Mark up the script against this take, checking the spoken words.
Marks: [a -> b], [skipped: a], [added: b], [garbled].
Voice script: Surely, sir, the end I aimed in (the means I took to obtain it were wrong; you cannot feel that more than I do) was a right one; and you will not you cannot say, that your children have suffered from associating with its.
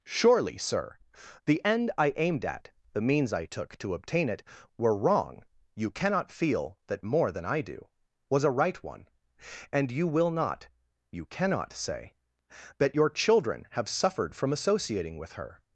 Surely, sir, the end I aimed [in -> at] (the means I took to obtain it were wrong; you cannot feel that more than I do) was a right one; and you will not you cannot say, that your children have suffered from associating with [its. -> her]